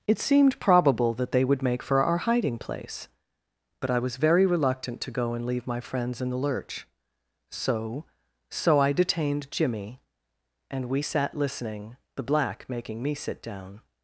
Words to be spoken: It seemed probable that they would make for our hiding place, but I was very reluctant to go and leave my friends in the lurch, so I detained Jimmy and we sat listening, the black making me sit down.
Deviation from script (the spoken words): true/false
true